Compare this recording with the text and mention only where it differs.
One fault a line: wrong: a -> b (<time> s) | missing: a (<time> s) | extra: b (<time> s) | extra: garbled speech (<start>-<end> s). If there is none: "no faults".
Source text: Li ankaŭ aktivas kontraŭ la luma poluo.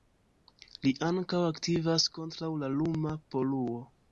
no faults